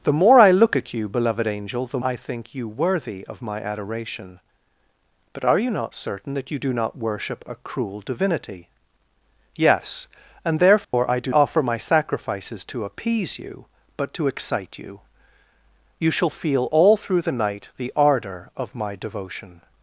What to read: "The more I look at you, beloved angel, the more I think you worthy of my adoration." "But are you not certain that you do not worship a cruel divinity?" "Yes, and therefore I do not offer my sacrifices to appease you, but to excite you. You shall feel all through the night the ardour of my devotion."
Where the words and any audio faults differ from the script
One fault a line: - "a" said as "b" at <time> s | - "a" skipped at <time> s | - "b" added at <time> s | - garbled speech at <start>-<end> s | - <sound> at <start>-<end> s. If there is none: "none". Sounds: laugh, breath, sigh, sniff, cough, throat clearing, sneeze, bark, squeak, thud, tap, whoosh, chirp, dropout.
- "more" skipped at 2.0 s
- dropout at 10.8-10.9 s
- "not" skipped at 11.3 s